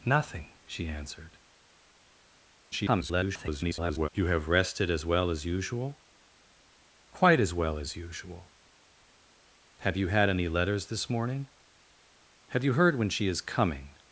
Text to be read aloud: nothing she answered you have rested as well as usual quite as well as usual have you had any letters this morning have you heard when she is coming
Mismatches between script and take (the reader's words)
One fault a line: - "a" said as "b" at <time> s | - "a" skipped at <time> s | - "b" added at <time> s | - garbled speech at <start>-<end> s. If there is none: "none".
- garbled speech at 2.7-4.1 s